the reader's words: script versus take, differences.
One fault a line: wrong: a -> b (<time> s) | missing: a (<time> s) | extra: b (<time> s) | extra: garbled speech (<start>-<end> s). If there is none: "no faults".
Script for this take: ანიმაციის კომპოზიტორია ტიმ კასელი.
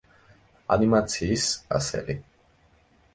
missing: კომპოზიტორია ტიმ (1.4 s)